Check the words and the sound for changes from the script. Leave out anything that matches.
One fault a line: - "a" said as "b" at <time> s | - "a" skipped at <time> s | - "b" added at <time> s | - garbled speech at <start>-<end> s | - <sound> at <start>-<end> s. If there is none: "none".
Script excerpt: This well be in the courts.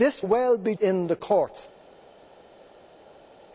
none